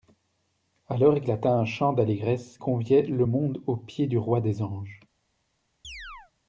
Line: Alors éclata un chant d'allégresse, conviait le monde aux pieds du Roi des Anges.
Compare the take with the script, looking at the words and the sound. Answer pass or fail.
fail